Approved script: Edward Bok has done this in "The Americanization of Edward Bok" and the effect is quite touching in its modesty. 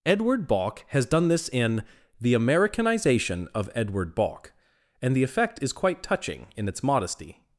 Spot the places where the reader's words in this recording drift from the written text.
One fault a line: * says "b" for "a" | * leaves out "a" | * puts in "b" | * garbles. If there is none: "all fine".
all fine